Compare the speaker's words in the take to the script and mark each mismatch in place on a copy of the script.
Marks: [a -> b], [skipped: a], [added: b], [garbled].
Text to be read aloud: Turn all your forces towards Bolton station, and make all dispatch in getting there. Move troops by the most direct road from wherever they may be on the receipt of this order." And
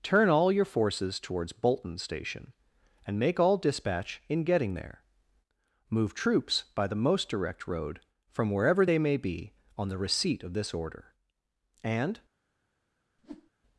Turn all your forces towards Bolton station, and make all dispatch in getting there. Move troops by the most direct road from wherever they may be on the receipt of this order." And